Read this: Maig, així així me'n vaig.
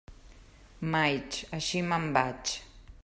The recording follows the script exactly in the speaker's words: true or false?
false